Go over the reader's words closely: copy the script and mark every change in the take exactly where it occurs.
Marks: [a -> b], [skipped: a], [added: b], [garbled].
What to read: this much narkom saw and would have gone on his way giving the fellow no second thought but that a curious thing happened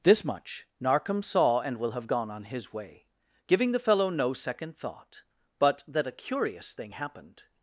this much narkom saw and [would -> will] have gone on his way giving the fellow no second thought but that a curious thing happened